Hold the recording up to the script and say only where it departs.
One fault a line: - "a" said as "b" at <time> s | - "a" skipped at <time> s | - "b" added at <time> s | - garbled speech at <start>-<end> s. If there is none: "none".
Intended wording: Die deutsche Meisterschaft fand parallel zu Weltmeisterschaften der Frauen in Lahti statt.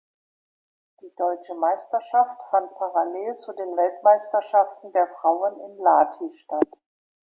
- "den" added at 3.5 s